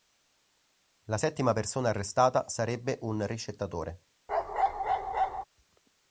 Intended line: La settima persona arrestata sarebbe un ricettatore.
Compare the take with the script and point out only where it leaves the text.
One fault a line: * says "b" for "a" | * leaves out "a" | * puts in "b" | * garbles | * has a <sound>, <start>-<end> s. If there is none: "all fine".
* has a bark, 4.3-5.4 s